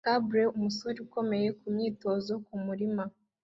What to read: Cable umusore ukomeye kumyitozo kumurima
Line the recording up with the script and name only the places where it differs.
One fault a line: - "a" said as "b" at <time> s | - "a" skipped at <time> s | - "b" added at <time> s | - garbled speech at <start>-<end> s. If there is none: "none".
none